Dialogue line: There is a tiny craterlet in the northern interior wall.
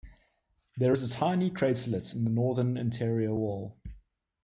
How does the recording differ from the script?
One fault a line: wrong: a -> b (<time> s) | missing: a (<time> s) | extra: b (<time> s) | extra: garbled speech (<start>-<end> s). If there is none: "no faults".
no faults